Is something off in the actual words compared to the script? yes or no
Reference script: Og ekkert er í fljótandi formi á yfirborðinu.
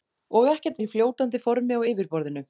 no